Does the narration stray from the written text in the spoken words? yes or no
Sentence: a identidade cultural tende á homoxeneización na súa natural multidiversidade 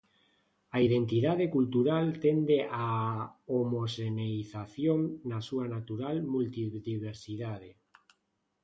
no